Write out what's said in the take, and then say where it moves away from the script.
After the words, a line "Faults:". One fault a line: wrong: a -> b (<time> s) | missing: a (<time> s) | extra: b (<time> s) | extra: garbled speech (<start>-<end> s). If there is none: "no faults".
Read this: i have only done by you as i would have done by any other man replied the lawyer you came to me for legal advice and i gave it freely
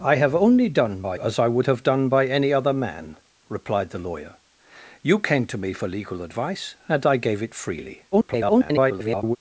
i have only done by as i would have done by any other man replied the lawyer you came to me for legal advice and i gave it freely [garbled]
Faults:
missing: you (1.2 s)
extra: garbled speech (8.1-9.4 s)